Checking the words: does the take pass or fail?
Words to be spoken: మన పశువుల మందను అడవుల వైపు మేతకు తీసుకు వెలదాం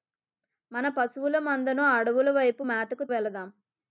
fail